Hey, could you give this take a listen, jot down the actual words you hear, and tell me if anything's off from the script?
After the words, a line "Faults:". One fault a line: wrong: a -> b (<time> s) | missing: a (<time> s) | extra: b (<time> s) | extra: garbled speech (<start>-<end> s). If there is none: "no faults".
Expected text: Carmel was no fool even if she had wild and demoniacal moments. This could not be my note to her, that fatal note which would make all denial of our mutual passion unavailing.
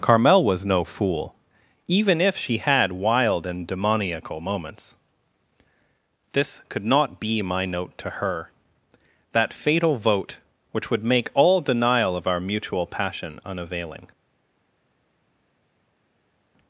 Carmel was no fool even if she had wild and demoniacal moments. This could not be my note to her, that fatal vote which would make all denial of our mutual passion unavailing.
Faults:
wrong: note -> vote (10.0 s)